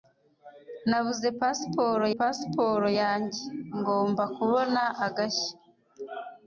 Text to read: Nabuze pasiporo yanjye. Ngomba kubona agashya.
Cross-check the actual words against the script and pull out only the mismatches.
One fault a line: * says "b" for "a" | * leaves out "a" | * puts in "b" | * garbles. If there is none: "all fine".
* puts in "pasiporo"